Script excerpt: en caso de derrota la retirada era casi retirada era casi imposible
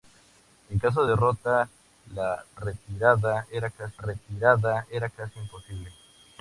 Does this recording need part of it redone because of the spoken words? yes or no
no